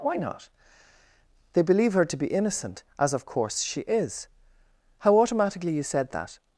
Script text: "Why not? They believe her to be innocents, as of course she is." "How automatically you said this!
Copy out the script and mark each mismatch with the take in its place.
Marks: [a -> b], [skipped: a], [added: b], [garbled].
"Why not? They believe her to be [innocents, -> innocent] as of course she is." "How automatically you said [this! -> that]